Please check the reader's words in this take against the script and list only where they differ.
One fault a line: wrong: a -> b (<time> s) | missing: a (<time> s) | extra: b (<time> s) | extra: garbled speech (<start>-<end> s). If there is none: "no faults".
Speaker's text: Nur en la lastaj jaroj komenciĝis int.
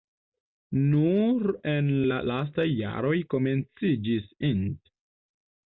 no faults